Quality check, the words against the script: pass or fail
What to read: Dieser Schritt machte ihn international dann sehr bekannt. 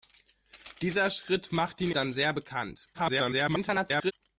fail